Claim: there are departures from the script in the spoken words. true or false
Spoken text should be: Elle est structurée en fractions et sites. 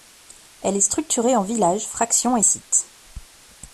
true